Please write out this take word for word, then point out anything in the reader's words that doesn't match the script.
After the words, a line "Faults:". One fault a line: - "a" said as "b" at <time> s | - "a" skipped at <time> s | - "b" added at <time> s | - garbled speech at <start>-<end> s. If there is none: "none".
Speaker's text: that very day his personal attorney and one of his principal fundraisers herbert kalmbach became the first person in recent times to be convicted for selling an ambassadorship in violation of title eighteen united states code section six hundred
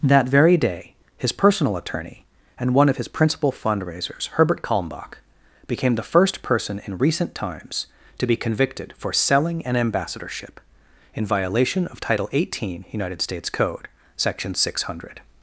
that very day his personal attorney and one of his principal fundraisers herbert kalmbach became the first person in recent times to be convicted for selling an ambassadorship in violation of title eighteen united states code section six hundred
Faults:
none